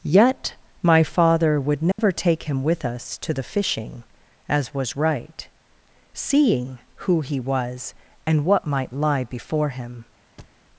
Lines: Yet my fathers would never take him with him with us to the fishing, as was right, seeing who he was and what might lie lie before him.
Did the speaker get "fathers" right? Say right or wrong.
wrong